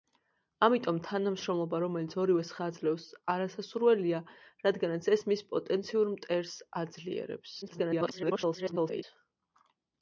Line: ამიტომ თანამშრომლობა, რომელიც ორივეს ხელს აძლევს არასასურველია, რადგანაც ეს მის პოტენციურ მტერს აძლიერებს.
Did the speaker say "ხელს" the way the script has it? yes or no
no